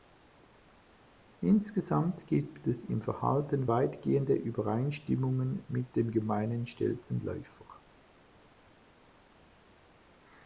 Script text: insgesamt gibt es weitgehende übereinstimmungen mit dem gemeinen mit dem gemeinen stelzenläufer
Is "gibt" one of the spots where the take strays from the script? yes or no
no